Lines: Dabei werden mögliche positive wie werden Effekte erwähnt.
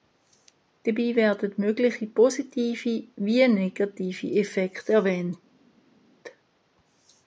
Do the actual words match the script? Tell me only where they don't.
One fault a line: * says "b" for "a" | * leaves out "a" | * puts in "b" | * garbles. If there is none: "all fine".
* says "negative" for "werden"